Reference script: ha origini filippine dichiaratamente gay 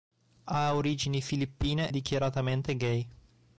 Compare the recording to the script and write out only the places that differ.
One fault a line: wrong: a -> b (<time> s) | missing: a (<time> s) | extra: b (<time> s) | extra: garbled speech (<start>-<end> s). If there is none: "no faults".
no faults